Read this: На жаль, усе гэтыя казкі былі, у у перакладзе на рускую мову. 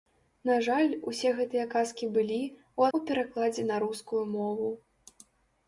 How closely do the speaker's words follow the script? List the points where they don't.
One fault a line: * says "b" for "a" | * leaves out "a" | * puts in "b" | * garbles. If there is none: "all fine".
all fine